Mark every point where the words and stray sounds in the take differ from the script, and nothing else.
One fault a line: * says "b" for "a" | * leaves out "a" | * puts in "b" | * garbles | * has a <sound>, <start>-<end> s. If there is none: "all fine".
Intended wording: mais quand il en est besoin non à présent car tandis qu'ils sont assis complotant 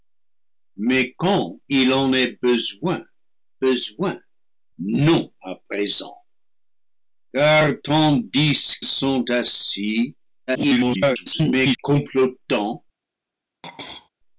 * puts in "besoin"
* leaves out "qu'ils"
* garbles
* has a throat clearing, 13.6-14.1 s